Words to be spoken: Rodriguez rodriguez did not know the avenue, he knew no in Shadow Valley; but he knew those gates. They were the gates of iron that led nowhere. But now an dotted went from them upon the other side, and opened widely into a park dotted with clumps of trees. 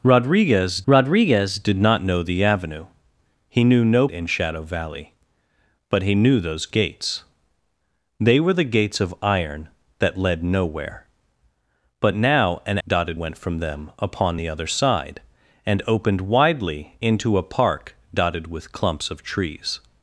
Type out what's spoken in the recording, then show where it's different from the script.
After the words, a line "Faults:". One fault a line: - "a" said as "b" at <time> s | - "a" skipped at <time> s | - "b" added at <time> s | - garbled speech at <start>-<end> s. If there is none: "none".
Rodriguez rodriguez did not know the avenue, he knew no in Shadow Valley; but he knew those gates. They were the gates of iron that led nowhere. But now an dotted went from them upon the other side, and opened widely into a park dotted with clumps of trees.
Faults:
none